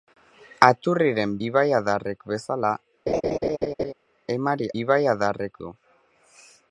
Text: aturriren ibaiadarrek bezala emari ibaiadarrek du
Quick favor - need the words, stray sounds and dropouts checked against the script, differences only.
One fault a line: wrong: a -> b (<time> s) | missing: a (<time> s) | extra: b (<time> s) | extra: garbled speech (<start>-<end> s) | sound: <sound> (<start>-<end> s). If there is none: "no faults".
sound: laugh (3.1-3.9 s)